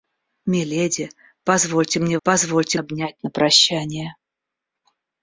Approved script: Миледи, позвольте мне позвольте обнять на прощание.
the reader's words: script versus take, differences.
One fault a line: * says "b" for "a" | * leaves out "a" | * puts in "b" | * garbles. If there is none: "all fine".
all fine